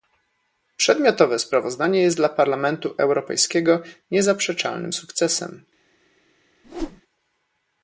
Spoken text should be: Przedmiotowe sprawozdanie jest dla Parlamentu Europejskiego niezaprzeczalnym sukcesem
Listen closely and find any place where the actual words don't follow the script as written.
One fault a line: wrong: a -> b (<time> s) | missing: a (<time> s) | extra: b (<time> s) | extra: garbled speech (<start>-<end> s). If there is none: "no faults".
no faults